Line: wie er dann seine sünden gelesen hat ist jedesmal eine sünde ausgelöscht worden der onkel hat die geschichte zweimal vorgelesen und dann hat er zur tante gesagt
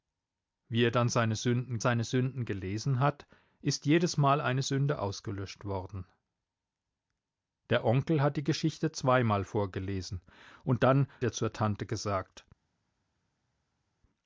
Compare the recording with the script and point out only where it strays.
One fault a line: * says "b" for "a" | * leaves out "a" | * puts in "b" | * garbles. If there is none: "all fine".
* puts in "seine sünden"
* leaves out "hat"